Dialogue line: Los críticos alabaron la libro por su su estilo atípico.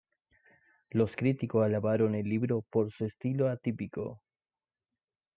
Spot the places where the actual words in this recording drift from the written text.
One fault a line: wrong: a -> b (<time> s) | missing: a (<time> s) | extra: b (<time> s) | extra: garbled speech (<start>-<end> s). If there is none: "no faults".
wrong: la -> el (2.1 s)
missing: su (3.0 s)